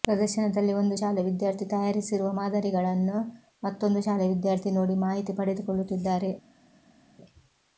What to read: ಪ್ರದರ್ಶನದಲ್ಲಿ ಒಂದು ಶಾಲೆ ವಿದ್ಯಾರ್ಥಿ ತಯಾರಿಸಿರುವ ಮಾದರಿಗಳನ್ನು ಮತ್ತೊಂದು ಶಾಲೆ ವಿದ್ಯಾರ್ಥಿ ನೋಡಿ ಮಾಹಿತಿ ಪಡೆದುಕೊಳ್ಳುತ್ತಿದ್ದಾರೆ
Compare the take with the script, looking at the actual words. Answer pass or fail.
pass